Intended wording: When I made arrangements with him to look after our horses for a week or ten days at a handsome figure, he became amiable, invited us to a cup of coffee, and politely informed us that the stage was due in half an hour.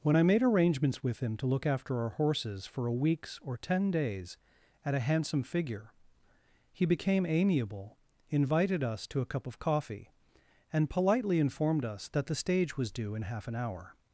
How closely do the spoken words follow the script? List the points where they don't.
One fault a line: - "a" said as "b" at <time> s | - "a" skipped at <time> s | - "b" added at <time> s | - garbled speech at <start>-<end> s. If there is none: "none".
- "week" said as "weeks" at 2.9 s